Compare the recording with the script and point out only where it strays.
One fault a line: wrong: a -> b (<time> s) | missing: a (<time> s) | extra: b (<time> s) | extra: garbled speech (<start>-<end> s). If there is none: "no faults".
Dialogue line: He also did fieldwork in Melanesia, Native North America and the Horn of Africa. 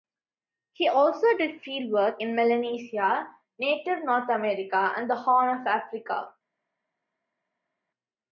no faults